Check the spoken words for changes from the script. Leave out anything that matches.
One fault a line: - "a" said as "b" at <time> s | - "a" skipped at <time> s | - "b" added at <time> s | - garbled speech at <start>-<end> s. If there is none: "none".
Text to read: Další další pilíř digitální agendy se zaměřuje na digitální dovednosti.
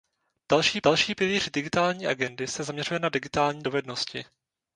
none